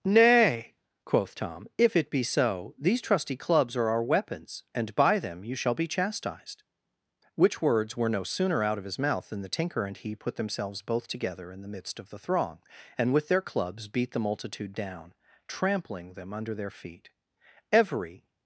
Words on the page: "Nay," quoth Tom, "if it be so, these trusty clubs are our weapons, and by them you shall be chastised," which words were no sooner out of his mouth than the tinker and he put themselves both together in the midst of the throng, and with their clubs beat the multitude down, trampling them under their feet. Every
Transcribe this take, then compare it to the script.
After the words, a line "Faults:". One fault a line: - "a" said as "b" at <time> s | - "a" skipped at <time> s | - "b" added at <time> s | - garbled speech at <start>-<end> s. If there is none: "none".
"Nay," quoth Tom, "if it be so, these trusty clubs are our weapons, and by them you shall be chastised," which words were no sooner out of his mouth than the tinker and he put themselves both together in the midst of the throng, and with their clubs beat the multitude down, trampling them under their feet. Every
Faults:
none